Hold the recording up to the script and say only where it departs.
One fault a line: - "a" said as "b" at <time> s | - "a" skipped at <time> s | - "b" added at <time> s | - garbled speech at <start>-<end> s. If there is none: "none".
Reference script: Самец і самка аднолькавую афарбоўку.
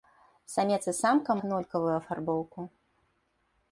none